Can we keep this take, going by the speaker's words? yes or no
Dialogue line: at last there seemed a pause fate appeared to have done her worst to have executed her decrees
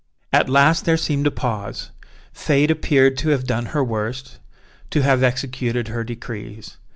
yes